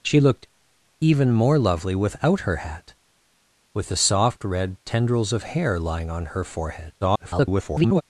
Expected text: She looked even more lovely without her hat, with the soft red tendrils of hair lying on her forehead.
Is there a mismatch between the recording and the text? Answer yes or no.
yes